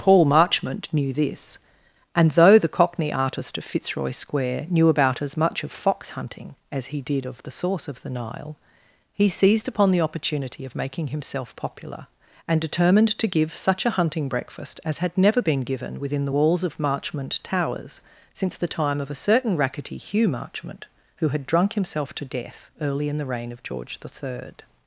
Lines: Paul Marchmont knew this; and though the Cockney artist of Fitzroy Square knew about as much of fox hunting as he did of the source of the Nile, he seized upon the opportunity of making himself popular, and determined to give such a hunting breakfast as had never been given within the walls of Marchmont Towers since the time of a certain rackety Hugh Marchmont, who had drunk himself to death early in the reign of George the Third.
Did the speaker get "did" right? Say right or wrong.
right